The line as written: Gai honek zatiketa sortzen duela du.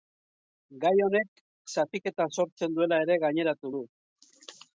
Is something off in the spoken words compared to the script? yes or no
yes